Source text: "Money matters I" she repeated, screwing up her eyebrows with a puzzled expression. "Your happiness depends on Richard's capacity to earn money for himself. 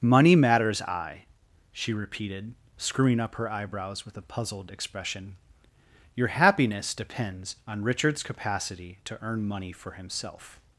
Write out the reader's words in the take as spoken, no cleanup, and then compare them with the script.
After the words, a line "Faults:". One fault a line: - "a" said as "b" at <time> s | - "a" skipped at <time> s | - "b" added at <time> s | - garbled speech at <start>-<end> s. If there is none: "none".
"Money matters I" she repeated, screwing up her eyebrows with a puzzled expression. "Your happiness depends on Richard's capacity to earn money for himself.
Faults:
none